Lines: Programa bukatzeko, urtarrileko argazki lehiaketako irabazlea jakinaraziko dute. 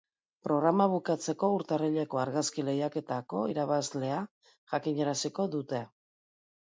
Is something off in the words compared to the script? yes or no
no